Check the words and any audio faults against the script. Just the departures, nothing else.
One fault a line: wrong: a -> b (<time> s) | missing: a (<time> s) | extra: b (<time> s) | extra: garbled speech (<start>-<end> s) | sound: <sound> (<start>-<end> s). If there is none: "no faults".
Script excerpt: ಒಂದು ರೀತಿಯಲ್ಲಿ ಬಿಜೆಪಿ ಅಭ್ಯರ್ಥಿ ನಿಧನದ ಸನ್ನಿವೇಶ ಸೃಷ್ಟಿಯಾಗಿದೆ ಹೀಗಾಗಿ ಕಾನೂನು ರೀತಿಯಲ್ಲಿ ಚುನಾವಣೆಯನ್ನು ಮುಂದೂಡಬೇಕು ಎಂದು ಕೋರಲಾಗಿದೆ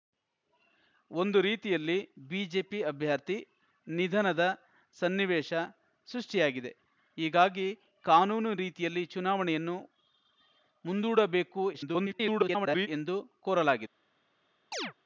extra: garbled speech (11.7-12.9 s)
sound: chirp (14.7-14.9 s)